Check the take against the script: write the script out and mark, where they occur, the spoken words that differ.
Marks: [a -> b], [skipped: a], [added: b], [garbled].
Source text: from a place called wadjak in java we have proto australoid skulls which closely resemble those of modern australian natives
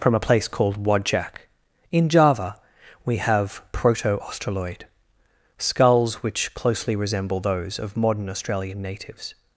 from a place called wadjak in java we have proto australoid skulls which closely resemble those of modern australian natives